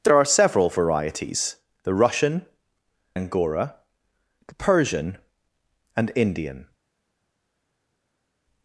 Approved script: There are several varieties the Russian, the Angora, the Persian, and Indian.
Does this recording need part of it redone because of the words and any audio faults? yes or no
yes